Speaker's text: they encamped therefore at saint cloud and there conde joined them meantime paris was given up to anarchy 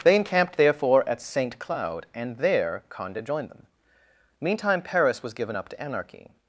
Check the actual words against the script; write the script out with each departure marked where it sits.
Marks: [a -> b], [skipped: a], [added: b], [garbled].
they encamped therefore at saint cloud and there conde joined them meantime paris was given up to anarchy